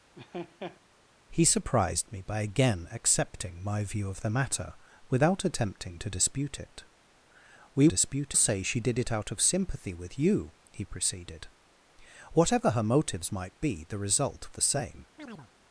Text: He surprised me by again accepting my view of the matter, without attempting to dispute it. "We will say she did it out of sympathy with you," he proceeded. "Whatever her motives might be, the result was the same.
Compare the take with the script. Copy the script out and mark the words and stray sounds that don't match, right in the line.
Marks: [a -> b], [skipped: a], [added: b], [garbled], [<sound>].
[laugh] He surprised me by again accepting my view of the matter, without attempting to dispute it. "We [will -> dispute] say she did it out of sympathy with you," he proceeded. "Whatever her motives might be, the result [skipped: was] the same. [chirp]